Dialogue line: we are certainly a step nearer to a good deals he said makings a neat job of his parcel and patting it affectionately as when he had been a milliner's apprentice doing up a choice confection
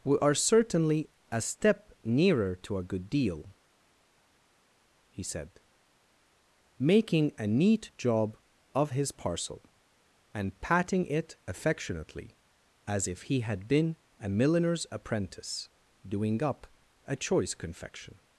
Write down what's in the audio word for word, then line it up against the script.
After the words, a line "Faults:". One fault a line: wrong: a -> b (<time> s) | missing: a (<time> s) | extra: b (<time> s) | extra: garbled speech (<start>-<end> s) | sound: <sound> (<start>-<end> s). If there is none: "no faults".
we are certainly a step nearer to a good deal he said making a neat job of his parcel and patting it affectionately as if he had been a milliner's apprentice doing up a choice confection
Faults:
wrong: deals -> deal (3.1 s)
wrong: makings -> making (6.8 s)
wrong: when -> if (13.1 s)